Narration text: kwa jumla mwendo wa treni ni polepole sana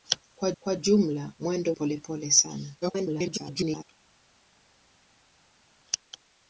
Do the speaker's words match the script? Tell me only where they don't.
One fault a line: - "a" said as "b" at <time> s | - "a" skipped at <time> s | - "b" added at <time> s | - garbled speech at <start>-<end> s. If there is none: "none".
- "kwa" added at 0.6 s
- "wa treni ni" skipped at 1.7 s
- garbled speech at 2.8-3.8 s